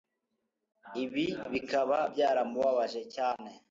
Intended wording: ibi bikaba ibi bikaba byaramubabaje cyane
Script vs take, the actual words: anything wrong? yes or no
yes